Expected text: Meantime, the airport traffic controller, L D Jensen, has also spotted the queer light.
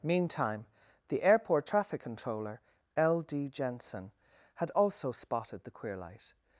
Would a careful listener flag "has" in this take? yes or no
yes